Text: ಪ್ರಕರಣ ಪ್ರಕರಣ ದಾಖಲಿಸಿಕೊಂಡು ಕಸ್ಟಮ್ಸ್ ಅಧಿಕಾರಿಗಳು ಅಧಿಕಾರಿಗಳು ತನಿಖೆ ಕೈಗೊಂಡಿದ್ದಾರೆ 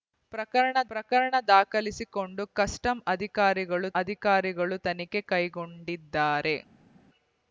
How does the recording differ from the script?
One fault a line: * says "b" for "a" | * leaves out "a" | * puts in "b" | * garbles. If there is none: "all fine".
all fine